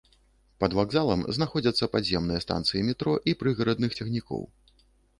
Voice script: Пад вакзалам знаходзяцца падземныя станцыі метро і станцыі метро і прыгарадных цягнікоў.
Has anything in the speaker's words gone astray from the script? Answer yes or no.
yes